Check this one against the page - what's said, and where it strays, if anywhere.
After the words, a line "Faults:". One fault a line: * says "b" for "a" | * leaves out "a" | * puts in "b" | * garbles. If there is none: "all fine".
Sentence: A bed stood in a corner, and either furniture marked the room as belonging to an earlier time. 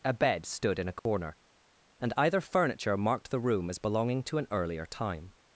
A bed stood in a corner, and either furniture marked the room as belonging to an earlier time.
Faults:
all fine